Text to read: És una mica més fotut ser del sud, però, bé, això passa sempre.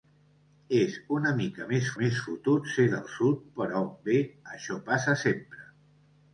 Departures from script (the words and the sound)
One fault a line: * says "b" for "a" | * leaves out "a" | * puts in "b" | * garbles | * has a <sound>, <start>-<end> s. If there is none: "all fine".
* puts in "més"